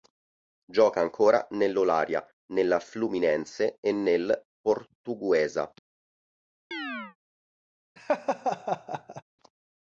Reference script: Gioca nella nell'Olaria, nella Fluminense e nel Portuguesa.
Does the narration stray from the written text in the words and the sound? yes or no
yes